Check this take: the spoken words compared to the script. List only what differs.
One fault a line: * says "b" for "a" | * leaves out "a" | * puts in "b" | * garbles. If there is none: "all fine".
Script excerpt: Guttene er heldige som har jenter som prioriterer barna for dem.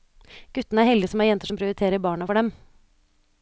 all fine